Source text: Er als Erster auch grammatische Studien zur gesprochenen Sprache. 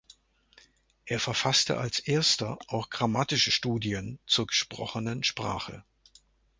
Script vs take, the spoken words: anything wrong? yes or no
yes